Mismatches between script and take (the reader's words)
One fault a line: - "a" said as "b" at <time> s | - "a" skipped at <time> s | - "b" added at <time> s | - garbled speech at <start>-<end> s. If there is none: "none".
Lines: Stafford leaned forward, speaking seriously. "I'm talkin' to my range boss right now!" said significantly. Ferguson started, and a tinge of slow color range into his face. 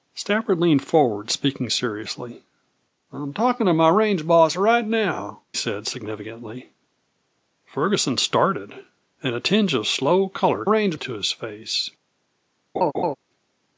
none